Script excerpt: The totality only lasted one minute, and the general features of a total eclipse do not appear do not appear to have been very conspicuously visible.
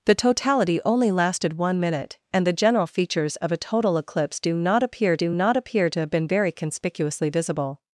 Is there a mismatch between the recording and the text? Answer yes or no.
no